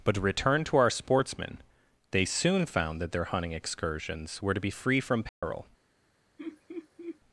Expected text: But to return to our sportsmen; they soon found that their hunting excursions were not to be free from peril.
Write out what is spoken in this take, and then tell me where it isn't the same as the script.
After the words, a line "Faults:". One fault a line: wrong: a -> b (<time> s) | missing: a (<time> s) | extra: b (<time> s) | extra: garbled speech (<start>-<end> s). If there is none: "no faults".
But to return to our sportsmen; they soon found that their hunting excursions were to be free from peril.
Faults:
missing: not (4.5 s)